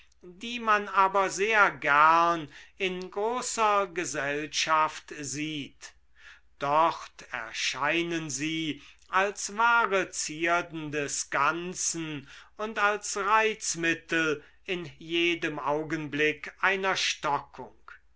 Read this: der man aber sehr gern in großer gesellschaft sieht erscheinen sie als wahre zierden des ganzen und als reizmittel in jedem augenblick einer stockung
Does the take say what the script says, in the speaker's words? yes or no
no